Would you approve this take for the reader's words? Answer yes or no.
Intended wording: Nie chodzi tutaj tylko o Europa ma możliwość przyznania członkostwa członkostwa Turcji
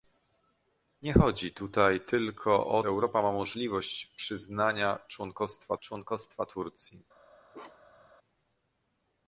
yes